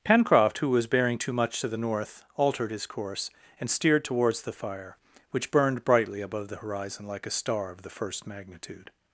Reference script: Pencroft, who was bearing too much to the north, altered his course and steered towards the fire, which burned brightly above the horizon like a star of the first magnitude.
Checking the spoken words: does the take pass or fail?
pass